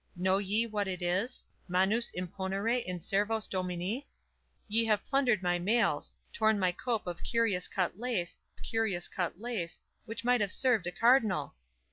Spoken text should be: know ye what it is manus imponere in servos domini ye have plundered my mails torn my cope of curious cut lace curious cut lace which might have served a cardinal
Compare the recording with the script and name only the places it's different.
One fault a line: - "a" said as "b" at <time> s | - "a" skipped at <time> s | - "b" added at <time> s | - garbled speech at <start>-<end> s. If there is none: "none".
none